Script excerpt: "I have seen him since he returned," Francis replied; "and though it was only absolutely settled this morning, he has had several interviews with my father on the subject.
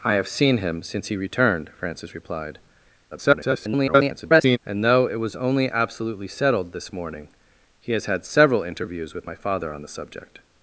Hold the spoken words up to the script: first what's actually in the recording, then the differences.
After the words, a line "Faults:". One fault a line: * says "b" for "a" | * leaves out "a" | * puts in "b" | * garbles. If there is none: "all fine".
"I have seen him since he returned," Francis replied; [garbled] "and though it was only absolutely settled this morning, he has had several interviews with my father on the subject.
Faults:
* garbles